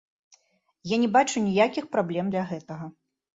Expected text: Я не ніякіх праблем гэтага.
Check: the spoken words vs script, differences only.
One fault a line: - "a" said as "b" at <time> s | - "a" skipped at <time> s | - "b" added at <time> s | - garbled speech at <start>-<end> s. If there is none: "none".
- "бачу" added at 1.2 s
- "для" added at 2.3 s